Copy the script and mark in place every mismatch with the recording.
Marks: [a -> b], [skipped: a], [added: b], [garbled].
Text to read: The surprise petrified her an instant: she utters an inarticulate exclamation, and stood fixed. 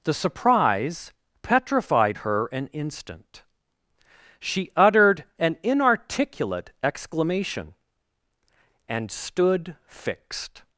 The surprise petrified her an instant: she [utters -> uttered] an inarticulate exclamation, and stood fixed.